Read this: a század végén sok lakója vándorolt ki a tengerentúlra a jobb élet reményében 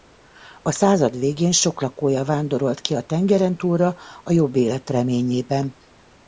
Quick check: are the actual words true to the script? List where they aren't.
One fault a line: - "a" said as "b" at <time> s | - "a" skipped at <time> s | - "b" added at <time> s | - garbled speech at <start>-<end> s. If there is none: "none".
none